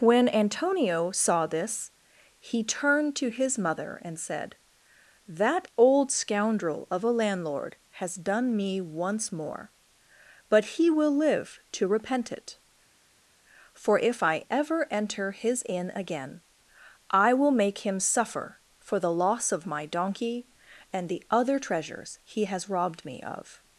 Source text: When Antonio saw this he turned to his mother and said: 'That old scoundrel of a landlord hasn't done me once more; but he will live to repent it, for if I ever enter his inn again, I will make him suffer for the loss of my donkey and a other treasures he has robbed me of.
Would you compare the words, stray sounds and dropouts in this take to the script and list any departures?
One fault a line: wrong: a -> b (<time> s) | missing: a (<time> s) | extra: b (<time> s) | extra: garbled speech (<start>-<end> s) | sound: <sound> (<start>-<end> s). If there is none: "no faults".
wrong: hasn't -> has (8.0 s)
wrong: a -> the (21.1 s)